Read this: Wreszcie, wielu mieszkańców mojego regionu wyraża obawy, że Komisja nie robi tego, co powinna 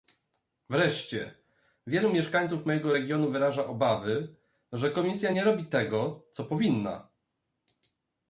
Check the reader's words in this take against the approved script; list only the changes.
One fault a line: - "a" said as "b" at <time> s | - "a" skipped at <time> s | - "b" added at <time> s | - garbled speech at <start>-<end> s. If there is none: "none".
none